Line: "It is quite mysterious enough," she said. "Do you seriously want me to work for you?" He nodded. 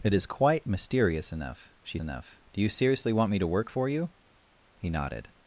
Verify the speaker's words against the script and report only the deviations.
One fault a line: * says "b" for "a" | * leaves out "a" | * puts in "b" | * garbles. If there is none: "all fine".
* says "enough" for "said"